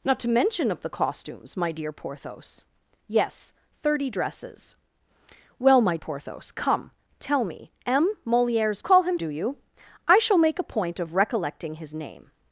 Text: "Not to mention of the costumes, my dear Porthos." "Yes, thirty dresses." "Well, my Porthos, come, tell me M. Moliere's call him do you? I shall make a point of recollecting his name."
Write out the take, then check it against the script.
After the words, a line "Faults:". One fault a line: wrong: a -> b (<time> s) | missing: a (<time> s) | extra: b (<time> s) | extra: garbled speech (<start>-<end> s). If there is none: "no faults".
"Not to mention of the costumes, my dear Porthos." "Yes, thirty dresses." "Well, my Porthos, come, tell me M. Moliere's call him do you? I shall make a point of recollecting his name."
Faults:
no faults